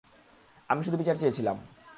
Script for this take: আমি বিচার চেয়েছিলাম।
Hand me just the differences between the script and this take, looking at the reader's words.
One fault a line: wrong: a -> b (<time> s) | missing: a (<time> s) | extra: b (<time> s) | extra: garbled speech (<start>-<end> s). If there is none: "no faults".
extra: শুধু (0.8 s)